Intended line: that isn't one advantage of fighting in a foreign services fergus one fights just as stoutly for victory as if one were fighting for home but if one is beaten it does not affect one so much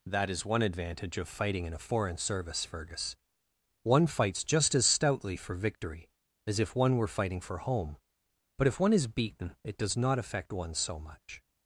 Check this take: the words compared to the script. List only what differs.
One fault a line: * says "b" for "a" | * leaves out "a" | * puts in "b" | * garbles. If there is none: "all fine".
* says "is" for "isn't"
* says "service" for "services"